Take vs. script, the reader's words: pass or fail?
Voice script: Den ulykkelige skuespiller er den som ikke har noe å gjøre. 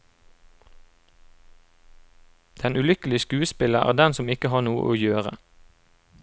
pass